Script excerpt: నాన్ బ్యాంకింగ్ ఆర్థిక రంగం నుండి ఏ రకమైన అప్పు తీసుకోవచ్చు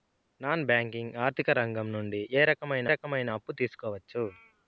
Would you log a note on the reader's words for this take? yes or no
yes